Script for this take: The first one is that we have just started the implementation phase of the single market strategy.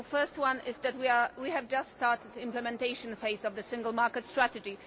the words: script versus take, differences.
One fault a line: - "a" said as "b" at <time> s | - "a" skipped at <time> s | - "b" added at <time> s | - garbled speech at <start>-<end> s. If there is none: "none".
none